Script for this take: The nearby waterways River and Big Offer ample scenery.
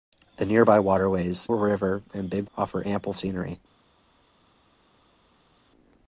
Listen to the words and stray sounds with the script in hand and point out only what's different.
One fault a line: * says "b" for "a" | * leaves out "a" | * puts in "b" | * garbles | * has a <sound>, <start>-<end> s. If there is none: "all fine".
all fine